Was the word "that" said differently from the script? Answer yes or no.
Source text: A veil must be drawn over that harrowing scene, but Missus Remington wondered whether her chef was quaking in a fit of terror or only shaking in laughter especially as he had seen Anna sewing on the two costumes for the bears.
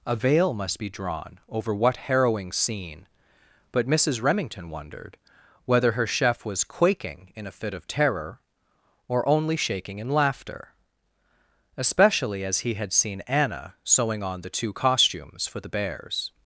yes